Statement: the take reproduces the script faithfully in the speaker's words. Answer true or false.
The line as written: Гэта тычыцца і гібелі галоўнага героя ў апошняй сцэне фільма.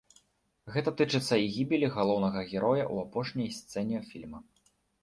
true